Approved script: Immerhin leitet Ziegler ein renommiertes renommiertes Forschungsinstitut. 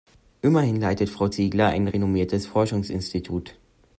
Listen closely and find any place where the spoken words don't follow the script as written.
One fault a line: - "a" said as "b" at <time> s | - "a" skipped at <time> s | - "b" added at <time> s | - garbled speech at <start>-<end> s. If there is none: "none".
- "Frau" added at 1.1 s
- "renommiertes" skipped at 2.5 s